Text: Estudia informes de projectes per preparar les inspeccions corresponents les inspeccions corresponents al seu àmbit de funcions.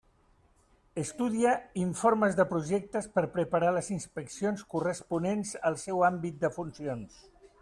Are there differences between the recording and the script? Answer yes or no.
yes